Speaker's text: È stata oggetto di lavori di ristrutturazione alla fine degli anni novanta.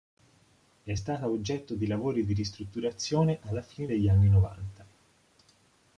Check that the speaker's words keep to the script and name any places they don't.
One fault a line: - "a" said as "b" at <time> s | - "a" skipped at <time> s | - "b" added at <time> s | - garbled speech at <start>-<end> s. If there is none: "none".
none